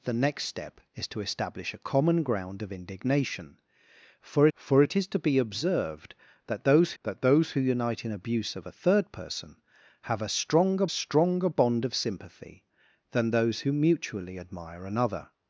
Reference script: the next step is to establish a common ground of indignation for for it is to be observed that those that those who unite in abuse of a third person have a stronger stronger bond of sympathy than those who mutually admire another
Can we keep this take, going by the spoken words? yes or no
yes